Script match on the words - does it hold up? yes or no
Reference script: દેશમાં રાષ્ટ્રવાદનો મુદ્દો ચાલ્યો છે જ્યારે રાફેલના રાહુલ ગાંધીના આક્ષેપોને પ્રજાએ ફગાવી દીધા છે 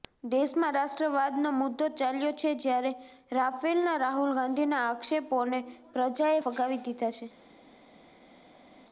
yes